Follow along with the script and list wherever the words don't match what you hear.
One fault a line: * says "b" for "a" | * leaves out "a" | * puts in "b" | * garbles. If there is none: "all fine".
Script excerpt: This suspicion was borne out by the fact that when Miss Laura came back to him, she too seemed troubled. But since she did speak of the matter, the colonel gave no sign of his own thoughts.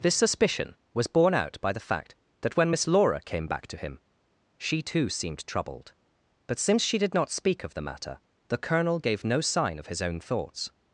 * puts in "not"